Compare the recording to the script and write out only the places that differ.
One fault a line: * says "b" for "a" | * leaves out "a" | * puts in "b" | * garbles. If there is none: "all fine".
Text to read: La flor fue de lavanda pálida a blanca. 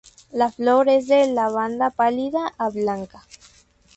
* says "es" for "fue"